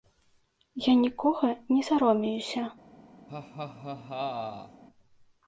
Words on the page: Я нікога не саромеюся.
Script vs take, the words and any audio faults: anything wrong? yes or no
yes